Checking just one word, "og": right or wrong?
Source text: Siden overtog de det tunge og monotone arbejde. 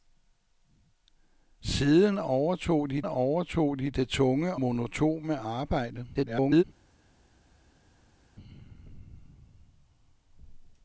wrong